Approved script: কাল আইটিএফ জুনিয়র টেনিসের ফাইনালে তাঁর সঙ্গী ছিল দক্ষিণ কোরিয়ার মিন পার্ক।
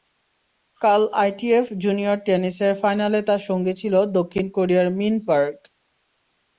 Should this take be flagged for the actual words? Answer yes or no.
no